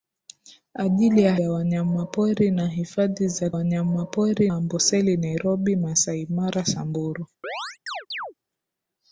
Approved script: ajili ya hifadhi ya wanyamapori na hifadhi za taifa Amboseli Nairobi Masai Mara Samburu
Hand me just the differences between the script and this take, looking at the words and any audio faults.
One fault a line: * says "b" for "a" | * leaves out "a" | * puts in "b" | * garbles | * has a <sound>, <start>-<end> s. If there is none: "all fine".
* leaves out "hifadhi"
* says "wanyamapori" for "taifa"
* has a chirp, 7.4-8.3 s